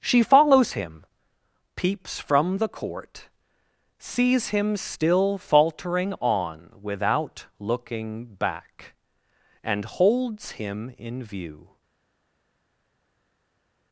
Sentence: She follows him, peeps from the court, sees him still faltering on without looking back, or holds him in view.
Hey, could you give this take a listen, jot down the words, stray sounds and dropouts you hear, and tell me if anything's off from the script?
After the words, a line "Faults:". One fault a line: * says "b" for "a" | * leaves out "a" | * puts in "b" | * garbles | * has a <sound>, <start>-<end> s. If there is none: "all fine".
She follows him, peeps from the court, sees him still faltering on without looking back, and holds him in view.
Faults:
* says "and" for "or"